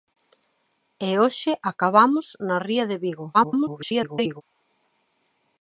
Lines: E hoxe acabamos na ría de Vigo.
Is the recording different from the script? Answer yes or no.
yes